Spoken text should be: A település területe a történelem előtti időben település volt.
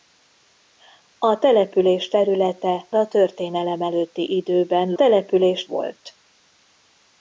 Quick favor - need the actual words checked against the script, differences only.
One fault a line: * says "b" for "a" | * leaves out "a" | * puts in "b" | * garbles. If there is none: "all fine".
all fine